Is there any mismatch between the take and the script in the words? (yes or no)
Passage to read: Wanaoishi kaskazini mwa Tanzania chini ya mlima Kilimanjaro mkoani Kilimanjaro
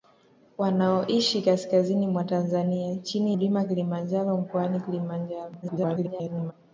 yes